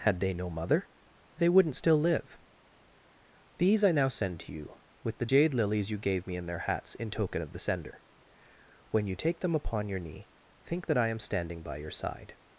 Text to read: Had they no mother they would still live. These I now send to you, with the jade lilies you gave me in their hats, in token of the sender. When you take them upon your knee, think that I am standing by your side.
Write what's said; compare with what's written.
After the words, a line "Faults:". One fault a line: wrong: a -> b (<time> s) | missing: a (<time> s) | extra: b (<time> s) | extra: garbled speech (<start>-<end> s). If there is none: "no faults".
Had they no mother they wouldn't still live. These I now send to you, with the jade lilies you gave me in their hats, in token of the sender. When you take them upon your knee, think that I am standing by your side.
Faults:
wrong: would -> wouldn't (1.5 s)